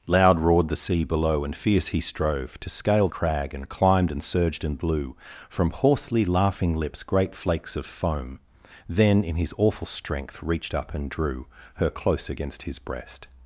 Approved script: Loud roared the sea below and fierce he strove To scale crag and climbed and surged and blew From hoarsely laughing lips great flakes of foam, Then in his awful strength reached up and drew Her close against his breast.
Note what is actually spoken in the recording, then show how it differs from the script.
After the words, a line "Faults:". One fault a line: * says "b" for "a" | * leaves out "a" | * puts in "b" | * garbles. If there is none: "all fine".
Loud roared the sea below and fierce he strove To scale crag and climbed and surged and blew From hoarsely laughing lips great flakes of foam, Then in his awful strength reached up and drew Her close against his breast.
Faults:
all fine